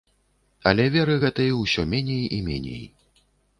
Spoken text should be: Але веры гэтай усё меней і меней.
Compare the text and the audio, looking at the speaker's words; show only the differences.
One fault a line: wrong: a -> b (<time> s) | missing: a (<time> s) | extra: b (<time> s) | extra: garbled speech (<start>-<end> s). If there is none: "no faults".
no faults